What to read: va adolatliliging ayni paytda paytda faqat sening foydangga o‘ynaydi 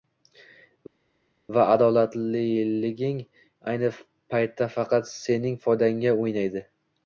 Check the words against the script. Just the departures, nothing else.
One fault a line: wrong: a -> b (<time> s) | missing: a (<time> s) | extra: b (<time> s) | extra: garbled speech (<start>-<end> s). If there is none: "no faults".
missing: paytda (4.7 s)